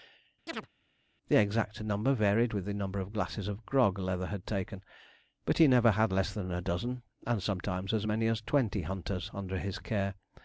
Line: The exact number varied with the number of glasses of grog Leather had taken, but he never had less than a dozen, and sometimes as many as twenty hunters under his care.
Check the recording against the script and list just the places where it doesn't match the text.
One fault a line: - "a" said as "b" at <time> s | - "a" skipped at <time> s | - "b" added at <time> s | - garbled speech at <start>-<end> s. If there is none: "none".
none